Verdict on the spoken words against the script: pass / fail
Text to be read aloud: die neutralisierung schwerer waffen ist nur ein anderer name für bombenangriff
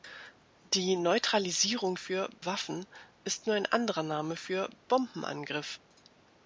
fail